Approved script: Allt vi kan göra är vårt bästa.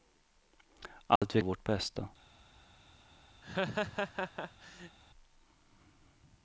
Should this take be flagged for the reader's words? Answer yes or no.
yes